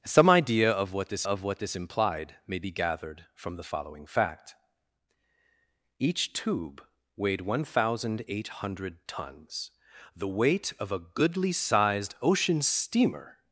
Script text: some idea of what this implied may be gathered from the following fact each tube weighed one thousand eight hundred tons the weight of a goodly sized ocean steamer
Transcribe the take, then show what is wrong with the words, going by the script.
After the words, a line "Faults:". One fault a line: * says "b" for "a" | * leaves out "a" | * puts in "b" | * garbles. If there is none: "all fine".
some idea of what this of what this implied may be gathered from the following fact each tube weighed one thousand eight hundred tons the weight of a goodly sized ocean steamer
Faults:
* puts in "of what this"